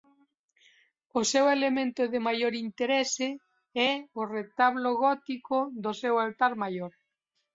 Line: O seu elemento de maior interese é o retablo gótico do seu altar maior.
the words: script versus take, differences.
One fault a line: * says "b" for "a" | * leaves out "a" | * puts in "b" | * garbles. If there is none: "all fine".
all fine